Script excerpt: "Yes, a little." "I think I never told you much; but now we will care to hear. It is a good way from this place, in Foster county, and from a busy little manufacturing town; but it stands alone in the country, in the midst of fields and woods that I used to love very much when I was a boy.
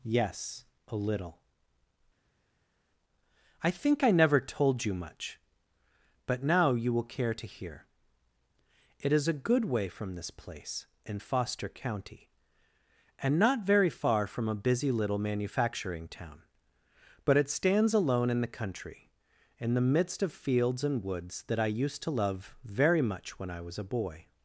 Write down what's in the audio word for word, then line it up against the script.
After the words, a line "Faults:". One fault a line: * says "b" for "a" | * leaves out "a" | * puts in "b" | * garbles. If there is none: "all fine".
"Yes, a little." "I think I never told you much; but now you will care to hear. It is a good way from this place, in Foster county, and not very far from a busy little manufacturing town; but it stands alone in the country, in the midst of fields and woods that I used to love very much when I was a boy.
Faults:
* says "you" for "we"
* puts in "not very far"